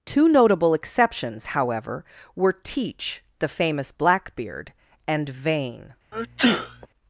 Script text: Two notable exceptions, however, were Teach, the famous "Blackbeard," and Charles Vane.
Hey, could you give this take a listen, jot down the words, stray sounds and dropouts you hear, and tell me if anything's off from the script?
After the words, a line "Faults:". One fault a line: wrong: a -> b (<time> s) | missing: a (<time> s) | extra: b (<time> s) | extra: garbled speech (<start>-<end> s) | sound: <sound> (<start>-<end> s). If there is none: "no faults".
Two notable exceptions, however, were Teach, the famous "Blackbeard," and Vane.
Faults:
missing: Charles (5.3 s)
sound: sneeze (6.1-6.9 s)